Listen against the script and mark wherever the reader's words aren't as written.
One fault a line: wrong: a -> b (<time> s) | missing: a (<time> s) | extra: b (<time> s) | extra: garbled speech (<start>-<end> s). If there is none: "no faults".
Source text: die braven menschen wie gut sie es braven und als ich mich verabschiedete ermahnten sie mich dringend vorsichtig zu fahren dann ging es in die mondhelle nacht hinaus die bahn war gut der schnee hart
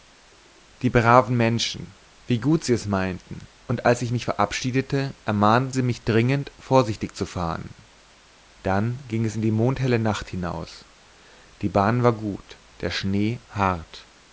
wrong: braven -> meinten (2.9 s)